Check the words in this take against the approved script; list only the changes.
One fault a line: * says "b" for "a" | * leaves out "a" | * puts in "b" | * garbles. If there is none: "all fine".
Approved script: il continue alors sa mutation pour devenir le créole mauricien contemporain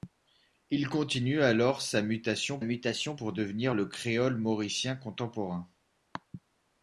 * puts in "mutation"